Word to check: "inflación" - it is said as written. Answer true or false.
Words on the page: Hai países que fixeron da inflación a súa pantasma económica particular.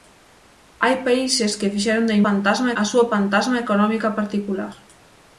false